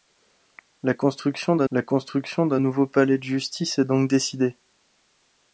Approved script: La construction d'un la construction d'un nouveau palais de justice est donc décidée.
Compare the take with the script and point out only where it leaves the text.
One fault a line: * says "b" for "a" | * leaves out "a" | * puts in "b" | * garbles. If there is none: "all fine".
all fine